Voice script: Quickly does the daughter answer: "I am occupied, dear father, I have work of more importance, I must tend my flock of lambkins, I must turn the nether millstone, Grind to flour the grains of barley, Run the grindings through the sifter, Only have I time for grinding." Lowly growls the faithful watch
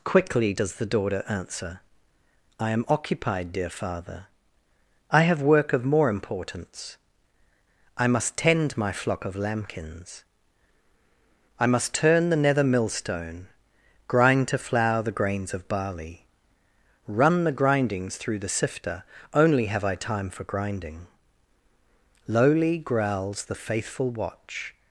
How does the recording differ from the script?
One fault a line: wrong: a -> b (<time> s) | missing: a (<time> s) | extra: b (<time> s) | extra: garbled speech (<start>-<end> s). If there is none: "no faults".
no faults